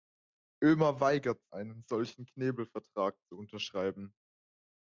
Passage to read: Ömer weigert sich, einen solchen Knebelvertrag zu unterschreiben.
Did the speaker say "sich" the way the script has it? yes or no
no